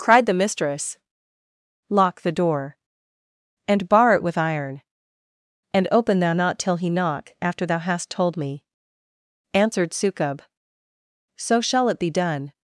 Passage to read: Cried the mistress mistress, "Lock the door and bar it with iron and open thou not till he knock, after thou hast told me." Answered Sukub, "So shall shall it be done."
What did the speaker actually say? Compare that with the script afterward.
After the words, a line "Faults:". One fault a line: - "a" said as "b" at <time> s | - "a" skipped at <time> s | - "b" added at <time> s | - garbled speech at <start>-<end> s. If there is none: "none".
Cried the mistress, "Lock the door and bar it with iron and open thou not till he knock, after thou hast told me." Answered Sukub, "So shall it be done."
Faults:
- "mistress" skipped at 1.0 s
- "shall" skipped at 11.9 s